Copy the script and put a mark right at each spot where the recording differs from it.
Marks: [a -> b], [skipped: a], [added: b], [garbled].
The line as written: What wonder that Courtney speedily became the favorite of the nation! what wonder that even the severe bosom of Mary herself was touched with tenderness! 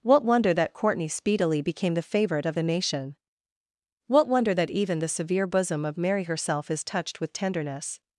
What wonder that Courtney speedily became the favorite of the nation! what wonder that even the severe bosom of Mary herself [was -> is] touched with tenderness!